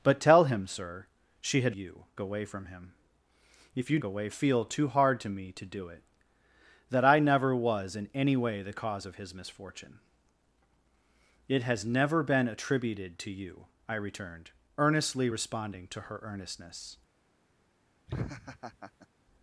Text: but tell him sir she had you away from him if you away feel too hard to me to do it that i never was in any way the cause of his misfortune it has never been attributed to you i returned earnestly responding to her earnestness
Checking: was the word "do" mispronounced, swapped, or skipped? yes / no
no